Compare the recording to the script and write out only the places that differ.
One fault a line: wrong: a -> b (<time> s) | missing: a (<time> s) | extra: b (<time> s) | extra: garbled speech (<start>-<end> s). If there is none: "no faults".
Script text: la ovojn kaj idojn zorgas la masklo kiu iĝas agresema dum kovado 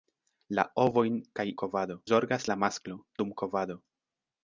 wrong: idojn -> kovado (1.6 s)
missing: kiu iĝas agresema (3.0 s)